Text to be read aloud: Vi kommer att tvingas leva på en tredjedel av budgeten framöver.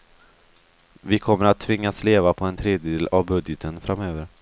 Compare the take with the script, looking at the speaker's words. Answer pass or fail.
pass